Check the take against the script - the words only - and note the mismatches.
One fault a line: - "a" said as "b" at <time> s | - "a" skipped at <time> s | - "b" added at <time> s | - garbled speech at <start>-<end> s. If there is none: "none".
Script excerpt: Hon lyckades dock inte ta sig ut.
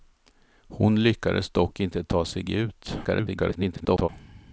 - garbled speech at 3.0-4.1 s